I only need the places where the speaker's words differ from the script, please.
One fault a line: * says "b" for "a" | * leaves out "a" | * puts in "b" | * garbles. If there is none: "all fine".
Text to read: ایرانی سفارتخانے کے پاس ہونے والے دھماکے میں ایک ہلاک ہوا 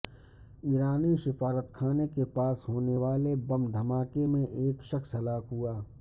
* puts in "بم"
* puts in "شخص"